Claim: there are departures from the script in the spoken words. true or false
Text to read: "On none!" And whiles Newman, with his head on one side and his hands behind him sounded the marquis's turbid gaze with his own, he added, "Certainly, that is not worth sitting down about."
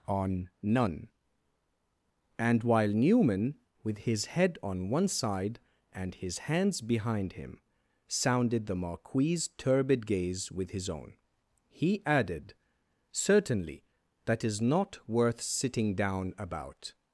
true